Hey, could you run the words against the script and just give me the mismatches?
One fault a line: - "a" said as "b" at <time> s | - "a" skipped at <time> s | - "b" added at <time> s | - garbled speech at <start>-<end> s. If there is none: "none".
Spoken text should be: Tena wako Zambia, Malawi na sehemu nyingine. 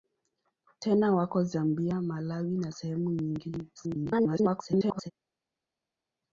- garbled speech at 3.8-5.1 s